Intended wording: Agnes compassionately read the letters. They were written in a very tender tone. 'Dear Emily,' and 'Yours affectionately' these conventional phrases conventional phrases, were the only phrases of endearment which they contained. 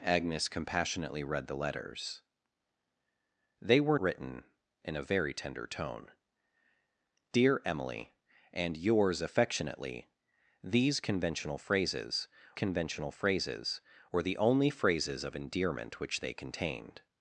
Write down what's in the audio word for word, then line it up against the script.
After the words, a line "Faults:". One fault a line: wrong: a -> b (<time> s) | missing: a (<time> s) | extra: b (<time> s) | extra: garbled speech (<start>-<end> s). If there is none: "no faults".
Agnes compassionately read the letters. They were written in a very tender tone. 'Dear Emily,' and 'Yours affectionately' these conventional phrases conventional phrases, were the only phrases of endearment which they contained.
Faults:
no faults